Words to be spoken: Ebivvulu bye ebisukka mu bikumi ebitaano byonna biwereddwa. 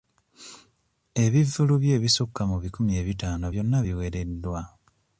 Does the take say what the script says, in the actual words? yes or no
yes